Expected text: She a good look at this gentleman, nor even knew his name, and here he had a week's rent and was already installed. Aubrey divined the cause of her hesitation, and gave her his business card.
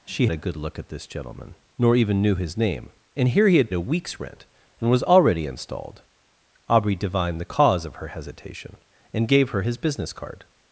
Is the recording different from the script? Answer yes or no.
no